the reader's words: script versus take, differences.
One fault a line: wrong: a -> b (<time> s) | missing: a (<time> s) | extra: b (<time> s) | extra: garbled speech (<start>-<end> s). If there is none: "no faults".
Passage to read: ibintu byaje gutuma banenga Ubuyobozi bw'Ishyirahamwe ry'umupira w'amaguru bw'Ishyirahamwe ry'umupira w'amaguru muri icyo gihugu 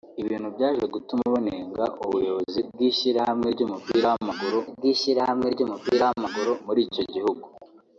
no faults